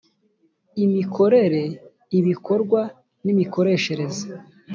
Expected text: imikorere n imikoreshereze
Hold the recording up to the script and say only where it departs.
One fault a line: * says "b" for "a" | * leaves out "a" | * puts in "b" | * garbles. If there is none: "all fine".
* puts in "ibikorwa"